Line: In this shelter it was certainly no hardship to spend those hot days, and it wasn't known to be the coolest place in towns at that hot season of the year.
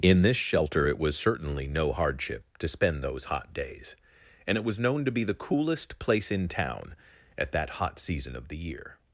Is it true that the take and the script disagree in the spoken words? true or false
true